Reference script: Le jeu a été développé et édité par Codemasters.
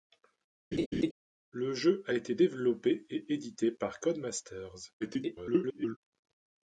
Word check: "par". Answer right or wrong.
right